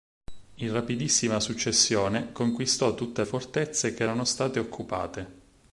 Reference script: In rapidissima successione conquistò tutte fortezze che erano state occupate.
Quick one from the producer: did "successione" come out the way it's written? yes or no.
yes